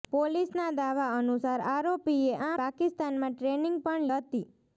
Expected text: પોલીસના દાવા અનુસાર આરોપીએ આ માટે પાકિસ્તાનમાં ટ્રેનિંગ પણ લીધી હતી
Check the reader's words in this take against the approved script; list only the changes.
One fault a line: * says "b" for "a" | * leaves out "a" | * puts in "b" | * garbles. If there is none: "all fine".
* leaves out "માટે"
* leaves out "લીધી"